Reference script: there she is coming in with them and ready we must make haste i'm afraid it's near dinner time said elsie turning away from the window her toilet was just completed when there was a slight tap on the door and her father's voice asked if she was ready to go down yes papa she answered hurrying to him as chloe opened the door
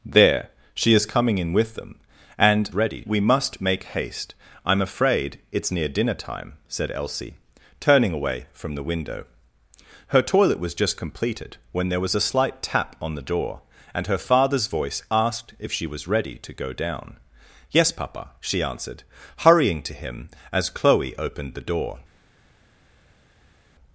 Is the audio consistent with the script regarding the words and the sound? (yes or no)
yes